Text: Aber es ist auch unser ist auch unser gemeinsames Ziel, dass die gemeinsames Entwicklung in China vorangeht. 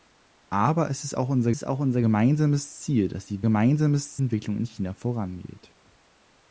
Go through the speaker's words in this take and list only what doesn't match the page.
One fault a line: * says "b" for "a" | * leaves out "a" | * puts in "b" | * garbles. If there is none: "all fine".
all fine